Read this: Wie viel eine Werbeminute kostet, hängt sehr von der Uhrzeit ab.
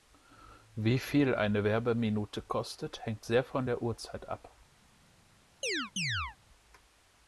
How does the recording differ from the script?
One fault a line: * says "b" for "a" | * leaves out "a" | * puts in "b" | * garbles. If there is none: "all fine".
all fine